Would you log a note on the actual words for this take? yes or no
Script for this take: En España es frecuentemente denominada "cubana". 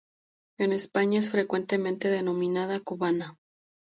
no